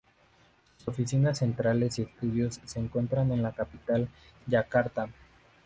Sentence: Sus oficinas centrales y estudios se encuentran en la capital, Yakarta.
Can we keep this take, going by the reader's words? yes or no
yes